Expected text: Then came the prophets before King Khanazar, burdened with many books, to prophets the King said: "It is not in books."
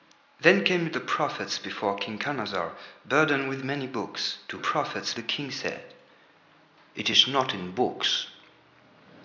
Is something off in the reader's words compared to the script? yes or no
no